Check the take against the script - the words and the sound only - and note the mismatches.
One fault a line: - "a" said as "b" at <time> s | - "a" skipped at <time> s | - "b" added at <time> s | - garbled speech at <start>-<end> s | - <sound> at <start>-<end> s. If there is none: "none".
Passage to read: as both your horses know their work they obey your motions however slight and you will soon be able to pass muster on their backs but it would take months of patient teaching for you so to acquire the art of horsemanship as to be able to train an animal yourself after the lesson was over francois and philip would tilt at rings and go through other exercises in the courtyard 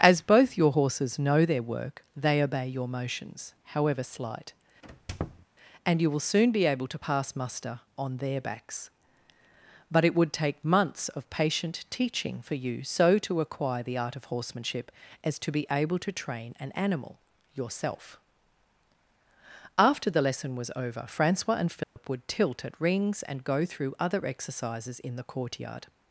- squeak at 4.8-5.5 s
- dropout at 21.8-22.0 s